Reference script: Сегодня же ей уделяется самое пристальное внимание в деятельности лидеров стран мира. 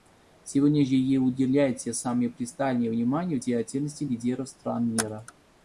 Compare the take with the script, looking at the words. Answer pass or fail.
pass